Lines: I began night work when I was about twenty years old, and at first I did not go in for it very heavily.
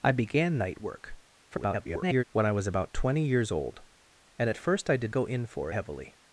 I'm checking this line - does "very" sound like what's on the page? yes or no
no